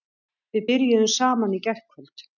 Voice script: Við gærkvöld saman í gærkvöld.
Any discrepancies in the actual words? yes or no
yes